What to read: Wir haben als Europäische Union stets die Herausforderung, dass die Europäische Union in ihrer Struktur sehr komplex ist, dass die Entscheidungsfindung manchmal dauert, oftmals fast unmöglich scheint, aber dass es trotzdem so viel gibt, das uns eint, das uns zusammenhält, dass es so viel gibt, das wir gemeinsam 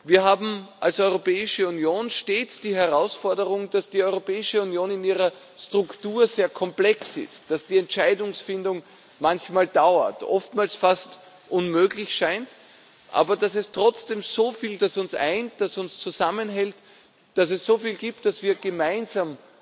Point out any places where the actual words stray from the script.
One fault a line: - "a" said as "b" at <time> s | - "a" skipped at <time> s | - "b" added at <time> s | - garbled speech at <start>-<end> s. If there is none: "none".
- "gibt" skipped at 14.8 s